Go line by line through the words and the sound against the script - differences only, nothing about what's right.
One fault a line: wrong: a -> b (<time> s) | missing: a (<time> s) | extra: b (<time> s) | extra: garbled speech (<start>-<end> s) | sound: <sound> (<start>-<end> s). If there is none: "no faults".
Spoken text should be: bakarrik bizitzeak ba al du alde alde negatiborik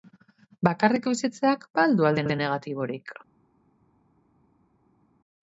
no faults